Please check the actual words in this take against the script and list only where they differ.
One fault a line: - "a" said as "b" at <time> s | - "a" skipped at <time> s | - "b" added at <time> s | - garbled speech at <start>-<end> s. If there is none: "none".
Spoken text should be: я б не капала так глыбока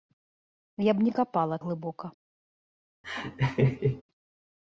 - "так" skipped at 1.6 s